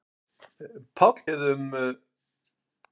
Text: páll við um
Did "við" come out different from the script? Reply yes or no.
no